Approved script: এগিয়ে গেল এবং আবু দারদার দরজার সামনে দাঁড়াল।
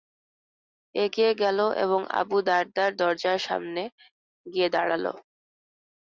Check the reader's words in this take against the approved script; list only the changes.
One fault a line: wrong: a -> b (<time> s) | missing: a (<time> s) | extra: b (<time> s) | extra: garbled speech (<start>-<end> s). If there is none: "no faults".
extra: গিয়ে (4.5 s)